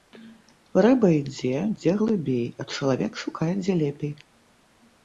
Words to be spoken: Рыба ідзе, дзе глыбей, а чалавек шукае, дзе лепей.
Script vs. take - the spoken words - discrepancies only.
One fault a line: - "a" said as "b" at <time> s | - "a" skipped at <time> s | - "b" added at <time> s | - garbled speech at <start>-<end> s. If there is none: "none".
none